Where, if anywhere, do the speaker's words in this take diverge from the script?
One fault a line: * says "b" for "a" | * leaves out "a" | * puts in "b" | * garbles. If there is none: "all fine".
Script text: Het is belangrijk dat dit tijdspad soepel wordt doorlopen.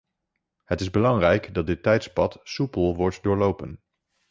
all fine